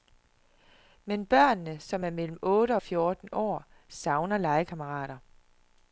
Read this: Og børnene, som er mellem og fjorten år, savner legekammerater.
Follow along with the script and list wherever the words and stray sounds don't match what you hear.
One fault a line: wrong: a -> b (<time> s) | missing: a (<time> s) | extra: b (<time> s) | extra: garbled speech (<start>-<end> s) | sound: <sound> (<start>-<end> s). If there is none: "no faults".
wrong: Og -> Men (1.1 s)
extra: otte (2.4 s)